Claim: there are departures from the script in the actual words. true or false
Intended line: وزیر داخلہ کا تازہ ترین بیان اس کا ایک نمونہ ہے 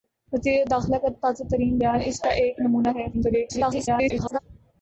true